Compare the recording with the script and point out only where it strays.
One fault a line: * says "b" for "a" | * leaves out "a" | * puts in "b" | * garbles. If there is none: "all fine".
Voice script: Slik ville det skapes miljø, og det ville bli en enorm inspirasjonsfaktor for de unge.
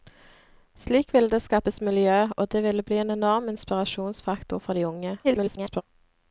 * garbles